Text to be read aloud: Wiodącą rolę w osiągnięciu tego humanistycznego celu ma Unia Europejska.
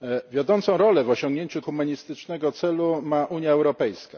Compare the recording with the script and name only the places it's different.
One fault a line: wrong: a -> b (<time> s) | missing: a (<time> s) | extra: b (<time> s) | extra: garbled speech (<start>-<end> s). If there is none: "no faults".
missing: tego (1.6 s)